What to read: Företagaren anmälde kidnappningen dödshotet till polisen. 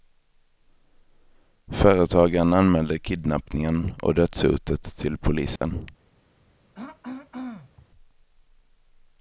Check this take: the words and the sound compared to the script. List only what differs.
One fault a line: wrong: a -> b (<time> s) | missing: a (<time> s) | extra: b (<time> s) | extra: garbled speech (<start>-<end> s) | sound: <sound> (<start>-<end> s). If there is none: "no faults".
extra: och (4.0 s)
sound: dropout (5.6-5.6 s)
sound: throat clearing (6.7-7.9 s)